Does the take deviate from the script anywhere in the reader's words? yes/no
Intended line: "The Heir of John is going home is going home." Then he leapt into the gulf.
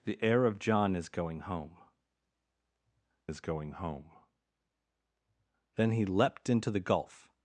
no